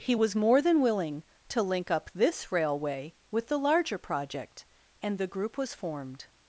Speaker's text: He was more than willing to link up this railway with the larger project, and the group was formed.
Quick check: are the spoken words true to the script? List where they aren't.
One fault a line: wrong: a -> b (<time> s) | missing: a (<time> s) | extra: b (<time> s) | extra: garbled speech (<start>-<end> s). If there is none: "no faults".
no faults